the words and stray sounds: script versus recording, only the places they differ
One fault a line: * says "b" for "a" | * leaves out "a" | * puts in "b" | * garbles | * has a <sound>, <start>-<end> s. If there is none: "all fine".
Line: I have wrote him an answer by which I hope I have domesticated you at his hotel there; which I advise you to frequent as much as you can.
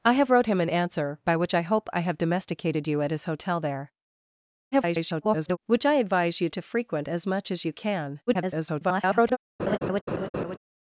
* garbles
* garbles
* has a laugh, 9.6-10.6 s